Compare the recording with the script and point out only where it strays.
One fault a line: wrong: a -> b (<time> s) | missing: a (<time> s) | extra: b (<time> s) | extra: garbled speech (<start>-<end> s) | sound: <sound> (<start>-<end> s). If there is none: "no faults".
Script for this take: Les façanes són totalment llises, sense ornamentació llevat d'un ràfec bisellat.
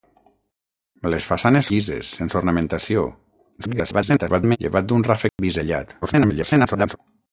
missing: són totalment (1.7 s)
extra: garbled speech (3.6-4.6 s)
sound: dropout (5.3-5.4 s)
extra: garbled speech (6.0-7.0 s)